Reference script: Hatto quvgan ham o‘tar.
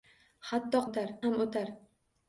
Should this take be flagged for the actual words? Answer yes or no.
yes